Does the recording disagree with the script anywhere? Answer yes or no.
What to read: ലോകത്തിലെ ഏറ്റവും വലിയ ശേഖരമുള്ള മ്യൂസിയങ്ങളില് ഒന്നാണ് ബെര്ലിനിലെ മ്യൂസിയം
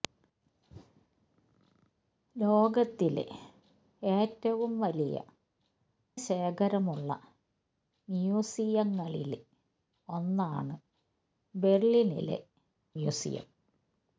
no